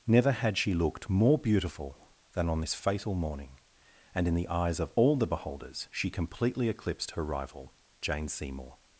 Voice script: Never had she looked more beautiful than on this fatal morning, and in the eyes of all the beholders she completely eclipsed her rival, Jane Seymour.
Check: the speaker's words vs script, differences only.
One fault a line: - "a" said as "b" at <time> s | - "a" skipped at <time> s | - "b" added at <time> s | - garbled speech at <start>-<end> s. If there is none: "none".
none